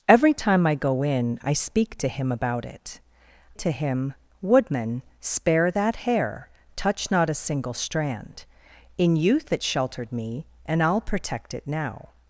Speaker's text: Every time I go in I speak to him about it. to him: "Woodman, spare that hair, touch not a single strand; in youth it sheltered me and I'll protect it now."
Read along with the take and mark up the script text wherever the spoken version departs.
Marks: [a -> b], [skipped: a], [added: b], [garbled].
Every time I go in I speak to him about it. to him: "Woodman, spare that hair, touch not a single strand; in youth it sheltered me and I'll protect it now."